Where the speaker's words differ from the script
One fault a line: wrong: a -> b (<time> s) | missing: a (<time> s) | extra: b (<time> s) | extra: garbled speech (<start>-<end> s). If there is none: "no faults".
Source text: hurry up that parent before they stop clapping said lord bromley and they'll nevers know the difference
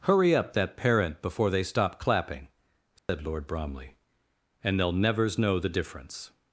no faults